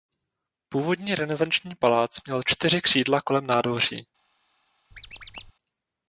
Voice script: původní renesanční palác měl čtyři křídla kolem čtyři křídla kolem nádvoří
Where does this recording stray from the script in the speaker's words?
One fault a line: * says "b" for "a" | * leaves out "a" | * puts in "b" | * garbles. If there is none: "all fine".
* leaves out "čtyři křídla kolem"